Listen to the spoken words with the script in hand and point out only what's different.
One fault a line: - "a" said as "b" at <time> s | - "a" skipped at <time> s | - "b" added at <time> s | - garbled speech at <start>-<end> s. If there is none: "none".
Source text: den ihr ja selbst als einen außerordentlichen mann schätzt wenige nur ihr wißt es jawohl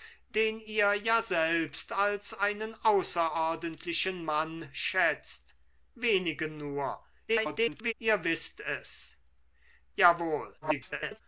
- garbled speech at 7.3-7.9 s
- garbled speech at 10.6-11.2 s